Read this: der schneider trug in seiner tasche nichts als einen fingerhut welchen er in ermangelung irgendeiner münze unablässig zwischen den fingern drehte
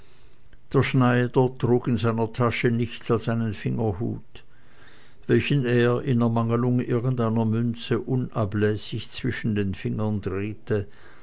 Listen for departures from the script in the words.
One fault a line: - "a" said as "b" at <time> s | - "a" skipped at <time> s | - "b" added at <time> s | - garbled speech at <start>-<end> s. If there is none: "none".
none